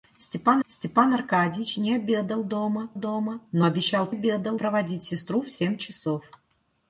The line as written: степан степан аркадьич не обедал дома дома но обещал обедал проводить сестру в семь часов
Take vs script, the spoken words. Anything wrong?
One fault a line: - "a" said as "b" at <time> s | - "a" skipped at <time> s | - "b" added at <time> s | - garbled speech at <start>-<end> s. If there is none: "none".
none